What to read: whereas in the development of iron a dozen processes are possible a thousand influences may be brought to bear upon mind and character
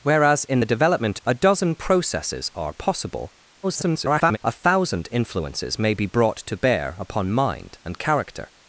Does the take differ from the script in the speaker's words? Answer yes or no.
yes